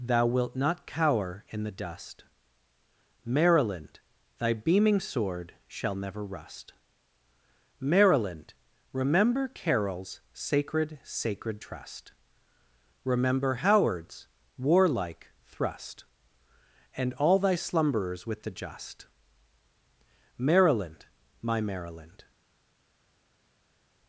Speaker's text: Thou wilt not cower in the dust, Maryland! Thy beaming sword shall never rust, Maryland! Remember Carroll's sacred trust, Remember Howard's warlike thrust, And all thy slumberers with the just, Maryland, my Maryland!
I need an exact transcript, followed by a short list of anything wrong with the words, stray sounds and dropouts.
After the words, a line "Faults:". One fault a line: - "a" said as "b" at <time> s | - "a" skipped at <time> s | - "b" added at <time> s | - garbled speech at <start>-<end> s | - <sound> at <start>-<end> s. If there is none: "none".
Thou wilt not cower in the dust, Maryland! Thy beaming sword shall never rust, Maryland! Remember Carroll's sacred sacred trust, Remember Howard's warlike thrust, And all thy slumberers with the just, Maryland, my Maryland!
Faults:
- "sacred" added at 11.0 s